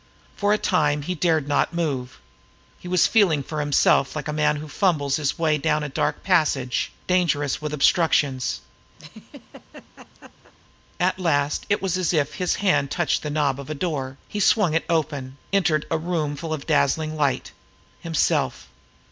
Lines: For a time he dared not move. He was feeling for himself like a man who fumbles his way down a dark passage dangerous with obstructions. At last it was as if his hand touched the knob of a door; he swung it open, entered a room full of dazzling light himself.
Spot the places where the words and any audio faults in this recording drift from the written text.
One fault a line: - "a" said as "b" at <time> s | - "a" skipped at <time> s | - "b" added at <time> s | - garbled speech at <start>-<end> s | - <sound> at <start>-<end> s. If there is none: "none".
- laugh at 9.0-10.5 s